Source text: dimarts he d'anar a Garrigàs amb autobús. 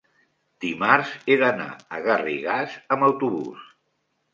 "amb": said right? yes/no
yes